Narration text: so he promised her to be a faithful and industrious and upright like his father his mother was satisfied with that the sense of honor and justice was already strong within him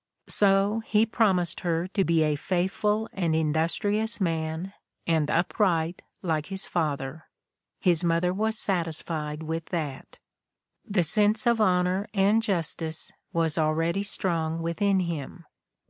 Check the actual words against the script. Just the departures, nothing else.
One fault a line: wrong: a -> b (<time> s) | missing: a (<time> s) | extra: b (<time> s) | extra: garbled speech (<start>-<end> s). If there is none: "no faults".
extra: man (4.2 s)